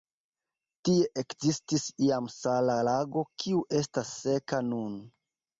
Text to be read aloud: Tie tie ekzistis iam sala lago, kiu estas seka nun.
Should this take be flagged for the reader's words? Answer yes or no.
yes